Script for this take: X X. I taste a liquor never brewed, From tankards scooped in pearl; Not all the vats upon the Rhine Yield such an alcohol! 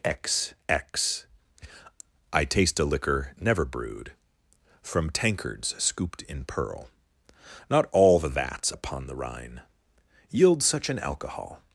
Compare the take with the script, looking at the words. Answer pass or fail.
pass